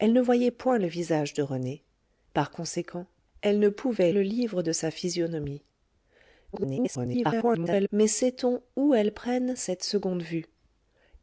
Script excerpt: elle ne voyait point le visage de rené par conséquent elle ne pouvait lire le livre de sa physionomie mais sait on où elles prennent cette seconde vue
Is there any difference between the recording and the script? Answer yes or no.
yes